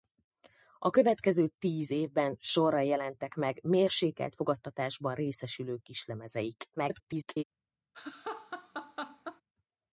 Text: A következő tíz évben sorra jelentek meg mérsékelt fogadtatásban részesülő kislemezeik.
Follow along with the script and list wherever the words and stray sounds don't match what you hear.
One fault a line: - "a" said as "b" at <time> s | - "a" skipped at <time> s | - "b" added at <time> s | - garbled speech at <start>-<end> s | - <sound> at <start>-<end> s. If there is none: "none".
- garbled speech at 6.8-7.4 s
- laugh at 7.9-9.4 s